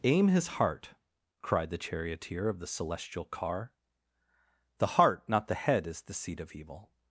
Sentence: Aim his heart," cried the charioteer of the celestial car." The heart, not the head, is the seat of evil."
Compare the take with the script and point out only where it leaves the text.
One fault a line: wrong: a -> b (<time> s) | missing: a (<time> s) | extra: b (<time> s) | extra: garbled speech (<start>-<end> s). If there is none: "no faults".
no faults